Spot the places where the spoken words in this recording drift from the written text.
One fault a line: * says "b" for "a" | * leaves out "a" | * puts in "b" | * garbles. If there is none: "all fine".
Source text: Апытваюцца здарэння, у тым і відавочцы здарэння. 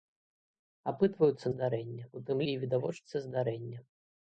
all fine